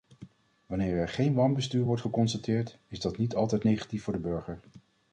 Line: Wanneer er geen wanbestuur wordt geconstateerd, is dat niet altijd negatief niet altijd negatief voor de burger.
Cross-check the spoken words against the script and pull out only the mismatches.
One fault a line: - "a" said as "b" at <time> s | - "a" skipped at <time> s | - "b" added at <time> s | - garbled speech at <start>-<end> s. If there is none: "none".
- "niet altijd negatief" skipped at 4.0 s